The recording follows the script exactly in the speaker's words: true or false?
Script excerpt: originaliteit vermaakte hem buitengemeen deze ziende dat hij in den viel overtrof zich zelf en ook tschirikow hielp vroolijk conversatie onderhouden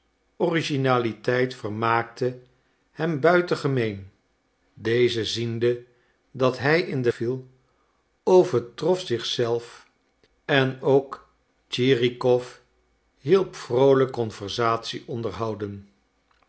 true